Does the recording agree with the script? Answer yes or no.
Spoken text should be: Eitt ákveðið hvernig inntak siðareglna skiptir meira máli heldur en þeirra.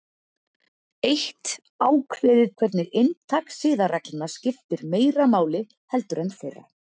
yes